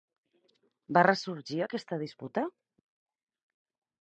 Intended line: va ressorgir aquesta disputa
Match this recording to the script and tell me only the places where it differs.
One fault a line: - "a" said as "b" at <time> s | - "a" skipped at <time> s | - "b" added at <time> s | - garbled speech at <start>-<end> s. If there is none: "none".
none